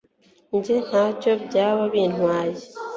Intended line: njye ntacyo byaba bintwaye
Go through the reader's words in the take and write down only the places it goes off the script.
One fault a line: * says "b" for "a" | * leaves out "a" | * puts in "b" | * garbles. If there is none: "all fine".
all fine